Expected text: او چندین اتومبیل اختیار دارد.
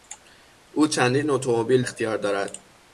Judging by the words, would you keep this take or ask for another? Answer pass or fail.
pass